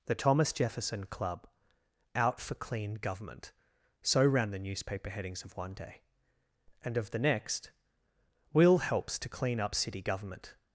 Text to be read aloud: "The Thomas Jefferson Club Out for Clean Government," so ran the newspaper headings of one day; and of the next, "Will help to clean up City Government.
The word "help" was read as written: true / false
false